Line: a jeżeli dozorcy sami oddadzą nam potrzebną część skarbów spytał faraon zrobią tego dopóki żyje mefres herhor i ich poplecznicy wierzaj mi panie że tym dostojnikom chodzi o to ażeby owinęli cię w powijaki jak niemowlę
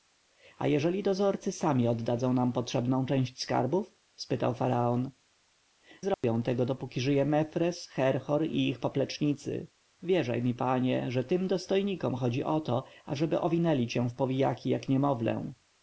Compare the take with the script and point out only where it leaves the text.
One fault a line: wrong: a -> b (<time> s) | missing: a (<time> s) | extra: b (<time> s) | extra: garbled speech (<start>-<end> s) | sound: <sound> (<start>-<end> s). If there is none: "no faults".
sound: dropout (6.1-6.2 s)